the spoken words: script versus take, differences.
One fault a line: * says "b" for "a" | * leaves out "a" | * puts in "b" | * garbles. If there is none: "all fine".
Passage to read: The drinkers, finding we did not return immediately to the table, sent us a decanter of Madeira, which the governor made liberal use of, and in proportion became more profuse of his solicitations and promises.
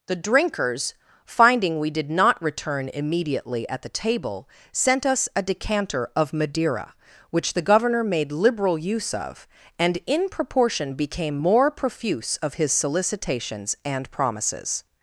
* says "at" for "to"